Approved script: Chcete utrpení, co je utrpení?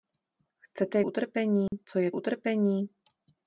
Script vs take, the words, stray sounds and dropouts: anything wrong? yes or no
yes